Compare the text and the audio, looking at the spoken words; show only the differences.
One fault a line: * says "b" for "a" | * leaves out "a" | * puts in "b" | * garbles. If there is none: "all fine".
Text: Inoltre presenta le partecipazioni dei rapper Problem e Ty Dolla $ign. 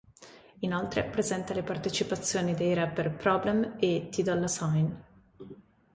all fine